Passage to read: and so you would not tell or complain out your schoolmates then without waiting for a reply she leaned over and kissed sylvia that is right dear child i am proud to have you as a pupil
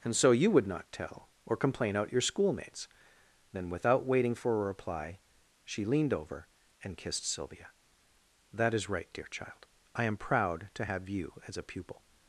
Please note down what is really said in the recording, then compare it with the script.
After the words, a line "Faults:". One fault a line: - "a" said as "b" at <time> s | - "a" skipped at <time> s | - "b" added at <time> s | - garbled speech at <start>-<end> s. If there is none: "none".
and so you would not tell or complain out your schoolmates then without waiting for a reply she leaned over and kissed sylvia that is right dear child i am proud to have you as a pupil
Faults:
none